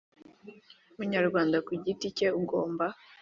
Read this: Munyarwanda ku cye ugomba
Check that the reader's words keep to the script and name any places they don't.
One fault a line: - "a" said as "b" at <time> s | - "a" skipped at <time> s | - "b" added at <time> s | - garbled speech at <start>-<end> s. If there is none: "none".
- "giti" added at 1.8 s